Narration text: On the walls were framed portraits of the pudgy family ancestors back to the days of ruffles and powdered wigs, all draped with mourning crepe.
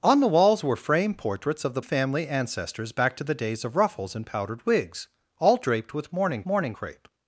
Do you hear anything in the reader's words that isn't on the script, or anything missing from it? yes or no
yes